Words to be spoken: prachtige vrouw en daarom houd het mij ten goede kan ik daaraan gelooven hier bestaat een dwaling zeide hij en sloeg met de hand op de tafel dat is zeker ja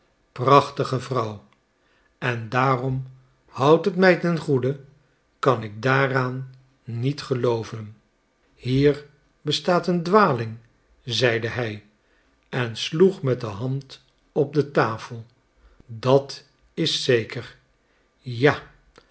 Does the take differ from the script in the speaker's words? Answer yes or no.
yes